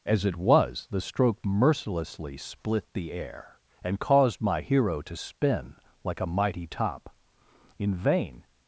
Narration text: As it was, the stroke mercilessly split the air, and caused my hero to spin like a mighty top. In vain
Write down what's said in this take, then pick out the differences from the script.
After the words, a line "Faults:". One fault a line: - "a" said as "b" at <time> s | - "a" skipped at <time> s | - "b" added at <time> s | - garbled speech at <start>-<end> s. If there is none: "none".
As it was, the stroke mercilessly split the air, and caused my hero to spin like a mighty top. In vain
Faults:
none